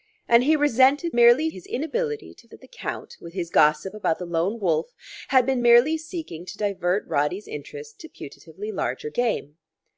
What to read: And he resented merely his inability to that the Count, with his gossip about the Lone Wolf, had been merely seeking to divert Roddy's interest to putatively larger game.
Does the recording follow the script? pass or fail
pass